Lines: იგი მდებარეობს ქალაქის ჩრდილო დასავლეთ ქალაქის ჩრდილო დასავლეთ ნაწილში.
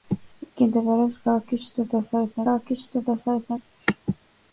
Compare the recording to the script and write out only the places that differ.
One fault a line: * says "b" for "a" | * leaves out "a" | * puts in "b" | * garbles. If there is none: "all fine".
all fine